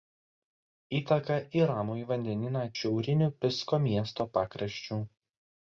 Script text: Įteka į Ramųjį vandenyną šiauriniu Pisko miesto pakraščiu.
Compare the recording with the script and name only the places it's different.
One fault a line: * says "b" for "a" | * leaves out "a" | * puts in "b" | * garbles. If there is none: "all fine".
all fine